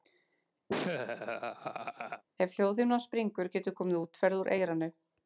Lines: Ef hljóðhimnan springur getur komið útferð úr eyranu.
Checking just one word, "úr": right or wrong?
right